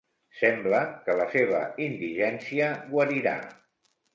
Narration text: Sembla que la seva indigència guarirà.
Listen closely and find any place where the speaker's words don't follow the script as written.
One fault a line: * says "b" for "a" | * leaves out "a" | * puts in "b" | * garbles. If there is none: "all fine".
all fine